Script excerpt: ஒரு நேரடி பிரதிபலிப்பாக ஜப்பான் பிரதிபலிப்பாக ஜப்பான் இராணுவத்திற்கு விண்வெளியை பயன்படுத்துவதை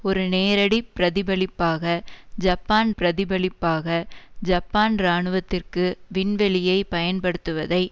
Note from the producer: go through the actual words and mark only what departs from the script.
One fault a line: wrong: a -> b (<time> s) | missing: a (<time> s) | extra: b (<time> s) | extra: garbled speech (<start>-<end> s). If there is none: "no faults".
no faults